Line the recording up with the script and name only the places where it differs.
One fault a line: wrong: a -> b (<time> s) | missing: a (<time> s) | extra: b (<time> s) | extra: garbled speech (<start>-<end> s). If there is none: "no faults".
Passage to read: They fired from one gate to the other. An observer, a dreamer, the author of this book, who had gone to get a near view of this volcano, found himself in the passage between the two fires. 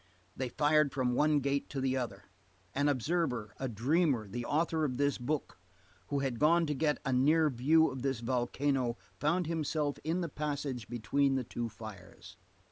no faults